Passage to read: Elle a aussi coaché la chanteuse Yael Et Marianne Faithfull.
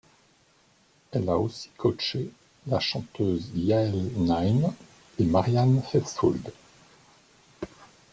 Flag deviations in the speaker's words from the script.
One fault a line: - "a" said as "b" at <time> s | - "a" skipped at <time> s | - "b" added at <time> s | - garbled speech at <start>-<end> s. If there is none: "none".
- "Naim" added at 4.2 s